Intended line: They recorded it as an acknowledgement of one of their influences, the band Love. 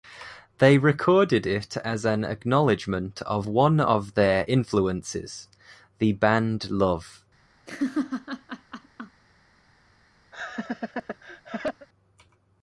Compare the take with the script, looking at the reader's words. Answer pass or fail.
pass